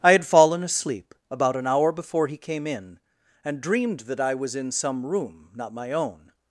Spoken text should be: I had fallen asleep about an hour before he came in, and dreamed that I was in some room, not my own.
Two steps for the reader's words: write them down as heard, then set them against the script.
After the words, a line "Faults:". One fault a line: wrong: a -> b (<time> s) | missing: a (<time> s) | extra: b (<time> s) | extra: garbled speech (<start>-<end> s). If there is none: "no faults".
I had fallen asleep about an hour before he came in, and dreamed that I was in some room, not my own.
Faults:
no faults